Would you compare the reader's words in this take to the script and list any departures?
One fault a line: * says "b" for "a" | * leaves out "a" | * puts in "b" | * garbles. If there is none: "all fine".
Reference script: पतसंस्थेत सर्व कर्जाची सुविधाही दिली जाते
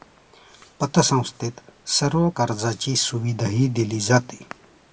all fine